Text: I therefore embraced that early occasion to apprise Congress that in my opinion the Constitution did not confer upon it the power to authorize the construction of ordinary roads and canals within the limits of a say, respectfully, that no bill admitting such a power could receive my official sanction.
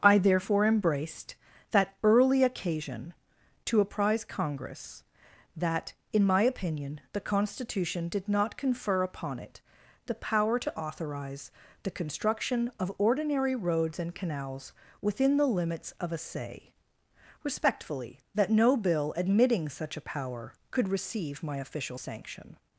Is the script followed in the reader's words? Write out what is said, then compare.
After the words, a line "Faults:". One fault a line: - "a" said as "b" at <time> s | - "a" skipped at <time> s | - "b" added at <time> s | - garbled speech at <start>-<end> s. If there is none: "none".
I therefore embraced that early occasion to apprise Congress that in my opinion the Constitution did not confer upon it the power to authorize the construction of ordinary roads and canals within the limits of a say, respectfully, that no bill admitting such a power could receive my official sanction.
Faults:
none